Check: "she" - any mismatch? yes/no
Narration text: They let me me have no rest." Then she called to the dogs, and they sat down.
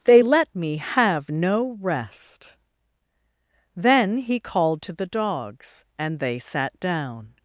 yes